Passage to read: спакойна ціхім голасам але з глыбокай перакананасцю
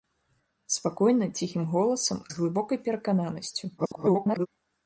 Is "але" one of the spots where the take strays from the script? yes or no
yes